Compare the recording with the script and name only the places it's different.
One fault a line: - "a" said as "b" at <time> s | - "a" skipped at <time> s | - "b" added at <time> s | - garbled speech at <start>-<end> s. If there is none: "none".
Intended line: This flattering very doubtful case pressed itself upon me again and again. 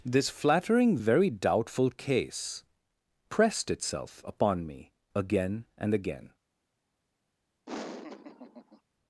none